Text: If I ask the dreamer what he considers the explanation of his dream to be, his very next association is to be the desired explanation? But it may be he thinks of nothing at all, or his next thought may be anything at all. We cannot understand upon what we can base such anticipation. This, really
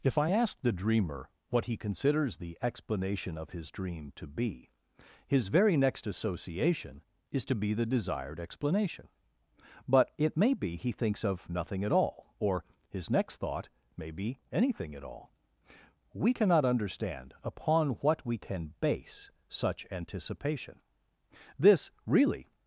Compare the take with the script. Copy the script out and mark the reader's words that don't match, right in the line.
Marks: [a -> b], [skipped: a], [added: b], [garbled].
If I ask the dreamer what he considers the explanation of his dream to be, his very next association is to be the desired explanation? But it may be he thinks of nothing at all, or his next thought may be anything at all. We cannot understand upon what we can base such anticipation. This, really